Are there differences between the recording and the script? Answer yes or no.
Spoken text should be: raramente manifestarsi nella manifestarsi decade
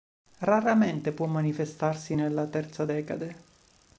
yes